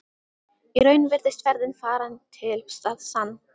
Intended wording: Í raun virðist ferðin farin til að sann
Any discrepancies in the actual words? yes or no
no